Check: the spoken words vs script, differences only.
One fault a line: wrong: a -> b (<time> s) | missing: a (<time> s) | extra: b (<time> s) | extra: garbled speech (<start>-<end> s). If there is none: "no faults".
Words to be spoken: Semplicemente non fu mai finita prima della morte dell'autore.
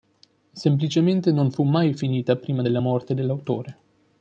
no faults